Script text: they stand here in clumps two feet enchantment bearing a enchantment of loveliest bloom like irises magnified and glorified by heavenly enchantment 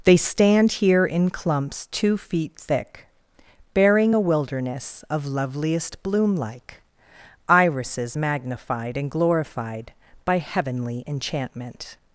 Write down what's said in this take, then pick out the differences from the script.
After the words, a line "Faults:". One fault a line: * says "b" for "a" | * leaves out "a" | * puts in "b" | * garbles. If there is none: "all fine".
they stand here in clumps two feet thick bearing a wilderness of loveliest bloom like irises magnified and glorified by heavenly enchantment
Faults:
* says "thick" for "enchantment"
* says "wilderness" for "enchantment"